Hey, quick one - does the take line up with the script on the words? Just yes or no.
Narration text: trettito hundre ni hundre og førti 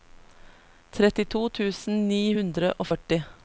no